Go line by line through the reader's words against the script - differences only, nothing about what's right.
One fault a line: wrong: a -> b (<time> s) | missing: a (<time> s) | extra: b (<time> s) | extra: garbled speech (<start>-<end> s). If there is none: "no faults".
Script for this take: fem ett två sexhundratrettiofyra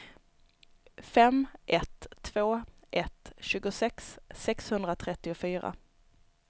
extra: ett tjugosex (2.9 s)